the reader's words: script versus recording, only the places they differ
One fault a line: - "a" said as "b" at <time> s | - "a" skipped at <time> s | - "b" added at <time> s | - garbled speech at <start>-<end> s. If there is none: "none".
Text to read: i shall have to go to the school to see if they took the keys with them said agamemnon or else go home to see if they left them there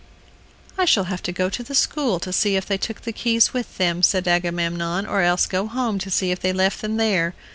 none